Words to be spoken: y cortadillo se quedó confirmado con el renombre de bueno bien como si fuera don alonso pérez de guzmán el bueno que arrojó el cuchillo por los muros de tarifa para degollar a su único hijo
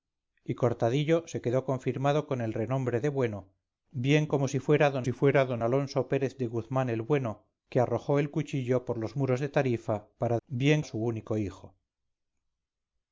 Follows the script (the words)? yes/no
no